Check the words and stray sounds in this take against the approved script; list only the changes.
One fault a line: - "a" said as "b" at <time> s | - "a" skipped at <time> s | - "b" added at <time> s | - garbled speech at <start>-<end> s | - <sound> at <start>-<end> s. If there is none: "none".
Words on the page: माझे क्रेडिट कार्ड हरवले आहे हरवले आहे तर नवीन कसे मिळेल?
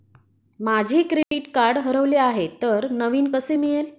- dropout at 1.2-1.3 s
- "हरवले आहे" skipped at 2.5 s